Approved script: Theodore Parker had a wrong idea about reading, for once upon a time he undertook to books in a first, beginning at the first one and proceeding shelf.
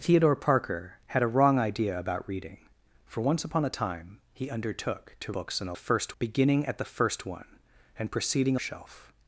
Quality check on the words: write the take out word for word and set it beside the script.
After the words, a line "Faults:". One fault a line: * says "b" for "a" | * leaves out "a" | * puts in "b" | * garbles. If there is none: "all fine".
Theodore Parker had a wrong idea about reading, for once upon a time he undertook to books in a first, beginning at the first one and proceeding shelf.
Faults:
all fine